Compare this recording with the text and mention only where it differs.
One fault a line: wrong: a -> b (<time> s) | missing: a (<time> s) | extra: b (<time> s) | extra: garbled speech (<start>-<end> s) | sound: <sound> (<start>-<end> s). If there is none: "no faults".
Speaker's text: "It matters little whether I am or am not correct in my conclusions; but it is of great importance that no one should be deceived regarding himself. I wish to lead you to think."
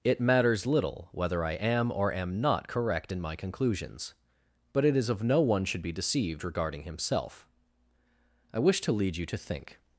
missing: great importance that (5.2 s)